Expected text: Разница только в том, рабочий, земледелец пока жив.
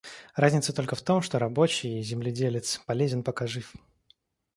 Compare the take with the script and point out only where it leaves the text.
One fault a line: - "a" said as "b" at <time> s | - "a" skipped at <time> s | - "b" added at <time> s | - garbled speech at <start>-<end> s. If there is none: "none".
- "что" added at 1.2 s
- "полезен" added at 2.9 s